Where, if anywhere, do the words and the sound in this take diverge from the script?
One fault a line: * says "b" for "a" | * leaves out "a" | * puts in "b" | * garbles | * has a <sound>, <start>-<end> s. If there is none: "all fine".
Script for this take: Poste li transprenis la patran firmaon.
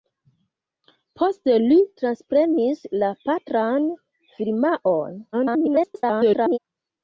* garbles